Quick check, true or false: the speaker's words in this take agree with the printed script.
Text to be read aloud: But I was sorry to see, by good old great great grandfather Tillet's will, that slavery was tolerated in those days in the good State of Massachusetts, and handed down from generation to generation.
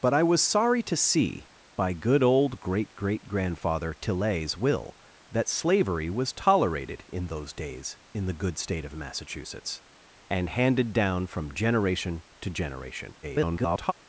false